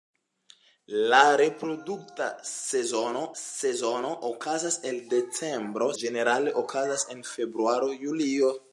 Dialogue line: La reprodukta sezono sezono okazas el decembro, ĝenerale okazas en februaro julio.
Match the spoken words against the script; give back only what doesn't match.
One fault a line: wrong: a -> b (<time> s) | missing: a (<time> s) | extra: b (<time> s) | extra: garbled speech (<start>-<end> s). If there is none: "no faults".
no faults